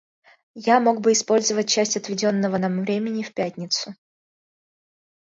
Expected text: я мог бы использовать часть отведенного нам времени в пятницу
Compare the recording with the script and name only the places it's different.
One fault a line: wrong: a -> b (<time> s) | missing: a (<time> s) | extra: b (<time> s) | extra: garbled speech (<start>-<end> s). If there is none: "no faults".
no faults